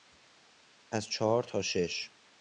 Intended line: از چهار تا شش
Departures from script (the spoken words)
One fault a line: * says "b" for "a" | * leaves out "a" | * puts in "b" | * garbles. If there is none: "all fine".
all fine